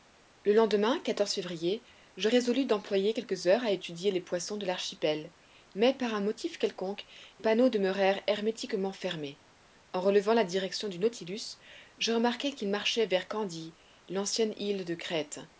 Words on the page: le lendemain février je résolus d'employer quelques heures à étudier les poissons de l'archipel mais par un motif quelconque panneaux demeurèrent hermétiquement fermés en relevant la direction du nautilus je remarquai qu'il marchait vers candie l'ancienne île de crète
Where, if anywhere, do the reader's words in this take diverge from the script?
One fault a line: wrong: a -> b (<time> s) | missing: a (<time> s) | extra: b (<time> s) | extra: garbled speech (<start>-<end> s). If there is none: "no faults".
no faults